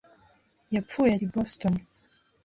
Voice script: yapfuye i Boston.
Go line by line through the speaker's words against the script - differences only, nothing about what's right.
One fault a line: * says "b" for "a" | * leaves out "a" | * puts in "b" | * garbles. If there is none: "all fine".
all fine